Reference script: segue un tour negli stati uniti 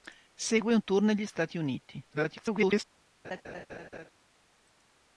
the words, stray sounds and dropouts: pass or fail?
fail